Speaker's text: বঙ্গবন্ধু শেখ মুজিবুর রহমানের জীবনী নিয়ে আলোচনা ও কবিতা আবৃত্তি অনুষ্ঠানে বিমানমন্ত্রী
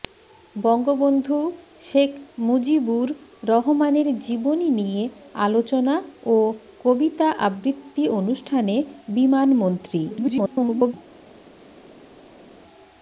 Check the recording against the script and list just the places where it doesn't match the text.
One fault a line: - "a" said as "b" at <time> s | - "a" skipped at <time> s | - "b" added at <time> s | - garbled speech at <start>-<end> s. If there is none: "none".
- garbled speech at 10.1-10.9 s